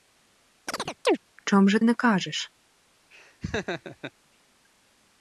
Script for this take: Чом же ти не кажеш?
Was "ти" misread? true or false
true